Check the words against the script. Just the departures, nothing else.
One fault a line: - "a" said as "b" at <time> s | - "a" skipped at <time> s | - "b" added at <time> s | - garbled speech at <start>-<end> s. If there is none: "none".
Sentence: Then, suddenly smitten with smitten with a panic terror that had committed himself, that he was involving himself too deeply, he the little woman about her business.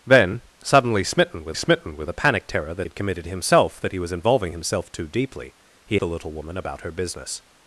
none